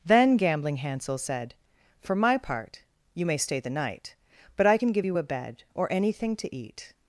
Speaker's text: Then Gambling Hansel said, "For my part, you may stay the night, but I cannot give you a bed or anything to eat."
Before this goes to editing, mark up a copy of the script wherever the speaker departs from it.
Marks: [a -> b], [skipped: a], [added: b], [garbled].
Then Gambling Hansel said, "For my part, you may stay the night, but I [cannot -> can] give you a bed or anything to eat."